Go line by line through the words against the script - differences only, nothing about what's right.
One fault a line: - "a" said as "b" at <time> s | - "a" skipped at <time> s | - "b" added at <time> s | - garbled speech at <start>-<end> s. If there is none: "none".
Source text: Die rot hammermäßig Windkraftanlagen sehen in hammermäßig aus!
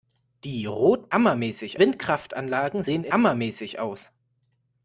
none